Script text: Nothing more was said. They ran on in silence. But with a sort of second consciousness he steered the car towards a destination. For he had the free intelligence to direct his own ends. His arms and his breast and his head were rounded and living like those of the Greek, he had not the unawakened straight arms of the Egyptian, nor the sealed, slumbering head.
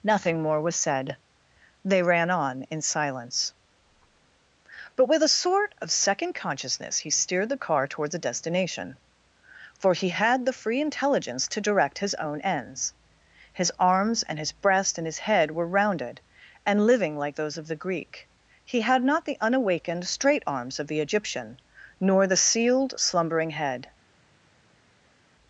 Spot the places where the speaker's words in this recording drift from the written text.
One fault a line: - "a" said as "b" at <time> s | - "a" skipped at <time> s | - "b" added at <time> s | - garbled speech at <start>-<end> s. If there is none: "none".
none